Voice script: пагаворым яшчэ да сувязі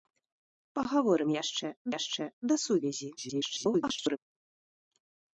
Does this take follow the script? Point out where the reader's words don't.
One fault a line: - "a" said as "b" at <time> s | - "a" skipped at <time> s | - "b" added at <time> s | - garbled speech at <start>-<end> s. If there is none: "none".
- "яшчэ" added at 2.0 s
- garbled speech at 3.2-4.2 s